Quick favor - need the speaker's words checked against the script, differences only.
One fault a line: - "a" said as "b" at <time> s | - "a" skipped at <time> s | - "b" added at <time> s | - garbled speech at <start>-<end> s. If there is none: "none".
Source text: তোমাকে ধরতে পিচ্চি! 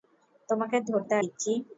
none